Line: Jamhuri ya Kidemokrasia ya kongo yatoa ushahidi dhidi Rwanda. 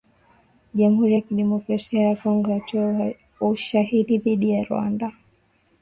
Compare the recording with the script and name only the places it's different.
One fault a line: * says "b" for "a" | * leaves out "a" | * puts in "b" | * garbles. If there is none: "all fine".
* puts in "ya"